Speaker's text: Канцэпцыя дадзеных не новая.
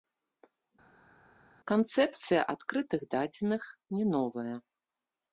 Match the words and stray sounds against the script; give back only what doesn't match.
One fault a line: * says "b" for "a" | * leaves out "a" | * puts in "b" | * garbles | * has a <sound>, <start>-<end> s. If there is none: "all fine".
* puts in "адкрытых"